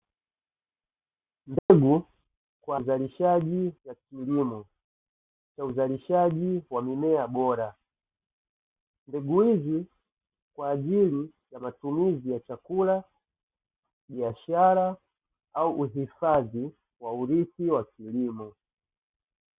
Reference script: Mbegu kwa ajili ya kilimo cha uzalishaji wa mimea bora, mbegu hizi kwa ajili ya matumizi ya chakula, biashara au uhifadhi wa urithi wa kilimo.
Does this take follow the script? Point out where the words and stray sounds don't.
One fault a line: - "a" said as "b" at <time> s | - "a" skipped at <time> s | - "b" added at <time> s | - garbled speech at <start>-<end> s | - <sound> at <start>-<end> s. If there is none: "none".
- dropout at 1.6-1.7 s
- "ajili" said as "uzalishaji" at 2.7 s